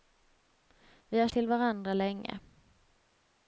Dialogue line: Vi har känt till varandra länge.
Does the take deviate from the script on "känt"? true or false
true